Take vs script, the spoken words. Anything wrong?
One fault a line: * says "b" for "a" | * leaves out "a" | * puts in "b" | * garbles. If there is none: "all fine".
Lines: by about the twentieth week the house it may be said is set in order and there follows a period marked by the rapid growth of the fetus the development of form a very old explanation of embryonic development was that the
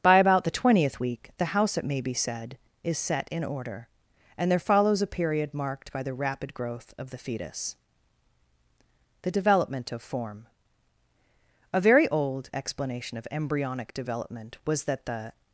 all fine